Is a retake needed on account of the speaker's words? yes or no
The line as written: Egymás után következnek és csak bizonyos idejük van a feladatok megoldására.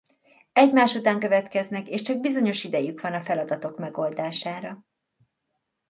no